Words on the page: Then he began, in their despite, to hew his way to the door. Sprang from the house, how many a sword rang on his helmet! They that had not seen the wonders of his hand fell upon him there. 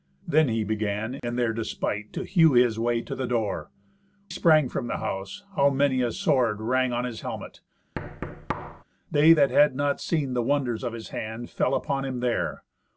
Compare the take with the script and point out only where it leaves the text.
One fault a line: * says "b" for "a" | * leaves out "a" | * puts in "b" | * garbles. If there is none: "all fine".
all fine